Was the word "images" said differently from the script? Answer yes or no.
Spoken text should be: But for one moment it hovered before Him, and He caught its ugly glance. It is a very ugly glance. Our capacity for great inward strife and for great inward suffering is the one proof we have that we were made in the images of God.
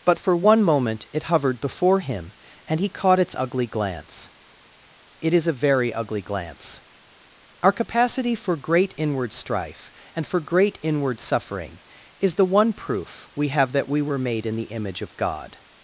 yes